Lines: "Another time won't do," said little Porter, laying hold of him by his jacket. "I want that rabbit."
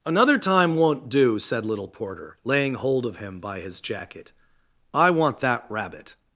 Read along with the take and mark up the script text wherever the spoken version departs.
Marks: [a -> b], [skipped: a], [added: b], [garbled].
"Another time won't do," said little Porter, laying hold of him by his jacket. "I want that rabbit."